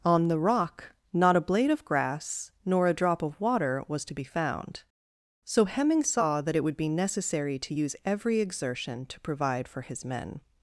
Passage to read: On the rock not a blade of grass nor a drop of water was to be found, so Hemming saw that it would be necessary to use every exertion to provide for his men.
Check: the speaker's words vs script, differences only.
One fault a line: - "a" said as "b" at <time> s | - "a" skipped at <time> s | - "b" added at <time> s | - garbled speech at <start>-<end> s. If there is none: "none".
none